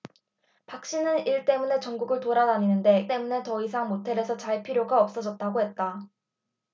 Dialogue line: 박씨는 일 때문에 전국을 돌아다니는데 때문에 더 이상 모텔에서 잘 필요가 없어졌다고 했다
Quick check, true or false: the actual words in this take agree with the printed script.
true